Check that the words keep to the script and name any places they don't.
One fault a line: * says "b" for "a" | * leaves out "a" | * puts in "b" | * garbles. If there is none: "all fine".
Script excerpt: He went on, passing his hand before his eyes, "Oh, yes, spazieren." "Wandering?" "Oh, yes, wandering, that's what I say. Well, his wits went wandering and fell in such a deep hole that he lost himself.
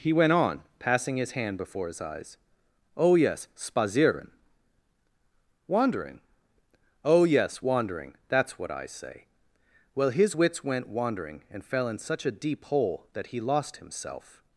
all fine